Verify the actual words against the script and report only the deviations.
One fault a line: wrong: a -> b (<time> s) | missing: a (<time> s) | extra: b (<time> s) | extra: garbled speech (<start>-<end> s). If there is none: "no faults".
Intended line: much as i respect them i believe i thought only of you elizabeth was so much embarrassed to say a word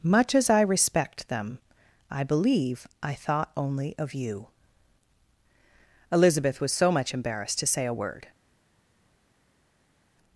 no faults